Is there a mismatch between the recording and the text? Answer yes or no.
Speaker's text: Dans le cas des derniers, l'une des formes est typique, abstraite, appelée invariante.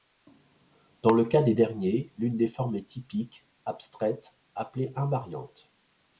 no